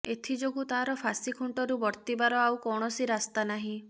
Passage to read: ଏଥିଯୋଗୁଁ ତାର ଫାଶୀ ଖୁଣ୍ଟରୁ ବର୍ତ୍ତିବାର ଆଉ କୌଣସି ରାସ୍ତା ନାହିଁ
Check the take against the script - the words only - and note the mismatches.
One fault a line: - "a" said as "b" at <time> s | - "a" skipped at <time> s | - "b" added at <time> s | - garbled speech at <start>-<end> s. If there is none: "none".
none